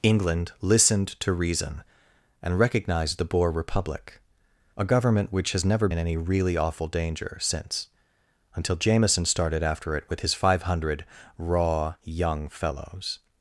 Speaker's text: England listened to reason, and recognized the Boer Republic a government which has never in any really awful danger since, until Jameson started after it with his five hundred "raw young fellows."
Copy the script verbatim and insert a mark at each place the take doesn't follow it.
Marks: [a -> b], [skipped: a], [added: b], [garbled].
England listened to reason, and recognized the Boer Republic a government which has never in any really awful danger since, until Jameson started after it with his five hundred "raw young fellows."